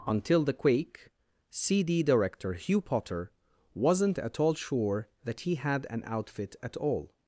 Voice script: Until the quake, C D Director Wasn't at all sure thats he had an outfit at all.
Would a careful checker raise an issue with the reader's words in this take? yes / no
yes